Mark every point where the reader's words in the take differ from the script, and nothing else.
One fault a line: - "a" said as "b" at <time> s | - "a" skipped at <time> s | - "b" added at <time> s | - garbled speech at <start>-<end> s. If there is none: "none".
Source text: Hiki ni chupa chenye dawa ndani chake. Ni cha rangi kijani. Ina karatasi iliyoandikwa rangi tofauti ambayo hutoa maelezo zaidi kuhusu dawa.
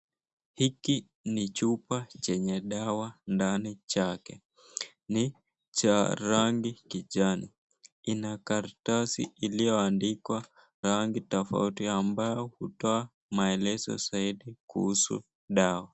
none